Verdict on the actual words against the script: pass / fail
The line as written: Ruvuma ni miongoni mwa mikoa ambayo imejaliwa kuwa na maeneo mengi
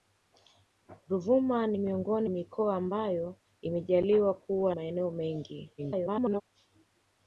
fail